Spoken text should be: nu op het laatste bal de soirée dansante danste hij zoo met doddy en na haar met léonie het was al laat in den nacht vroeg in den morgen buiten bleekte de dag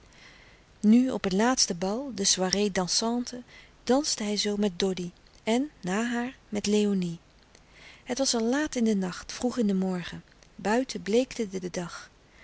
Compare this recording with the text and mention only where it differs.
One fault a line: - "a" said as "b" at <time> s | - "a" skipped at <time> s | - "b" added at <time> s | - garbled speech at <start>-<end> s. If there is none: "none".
- "de" added at 11.6 s